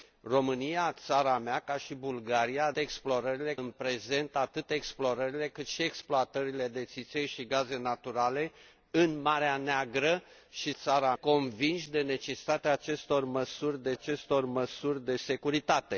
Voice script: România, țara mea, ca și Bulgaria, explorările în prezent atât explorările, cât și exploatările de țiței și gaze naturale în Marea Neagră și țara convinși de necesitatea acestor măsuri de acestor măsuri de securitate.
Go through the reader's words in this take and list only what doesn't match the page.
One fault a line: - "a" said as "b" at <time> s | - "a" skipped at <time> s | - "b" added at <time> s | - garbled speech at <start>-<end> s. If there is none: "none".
none